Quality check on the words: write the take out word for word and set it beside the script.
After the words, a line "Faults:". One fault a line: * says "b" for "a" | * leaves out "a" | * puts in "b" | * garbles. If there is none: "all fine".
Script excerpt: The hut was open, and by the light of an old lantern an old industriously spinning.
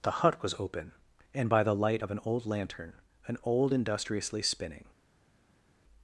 The hut was open, and by the light of an old lantern an old industriously spinning.
Faults:
all fine